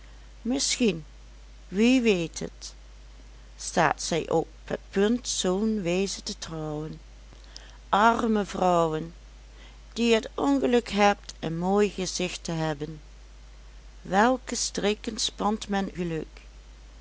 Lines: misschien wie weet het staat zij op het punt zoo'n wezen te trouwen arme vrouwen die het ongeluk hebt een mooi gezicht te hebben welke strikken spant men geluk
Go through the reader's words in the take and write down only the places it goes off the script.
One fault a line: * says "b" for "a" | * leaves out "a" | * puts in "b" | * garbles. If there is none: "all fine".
all fine